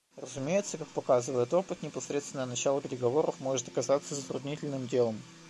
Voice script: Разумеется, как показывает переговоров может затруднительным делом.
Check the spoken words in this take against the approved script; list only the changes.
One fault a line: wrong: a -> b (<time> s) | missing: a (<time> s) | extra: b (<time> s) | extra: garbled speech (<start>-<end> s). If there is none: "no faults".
extra: опыт непосредственное начало (1.5 s)
extra: оказаться (3.7 s)